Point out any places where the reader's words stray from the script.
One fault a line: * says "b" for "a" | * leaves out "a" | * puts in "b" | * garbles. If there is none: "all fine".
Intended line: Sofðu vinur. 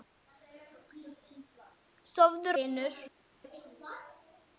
all fine